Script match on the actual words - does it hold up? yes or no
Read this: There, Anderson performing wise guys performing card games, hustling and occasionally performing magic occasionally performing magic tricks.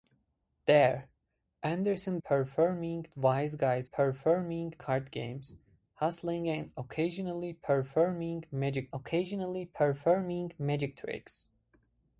yes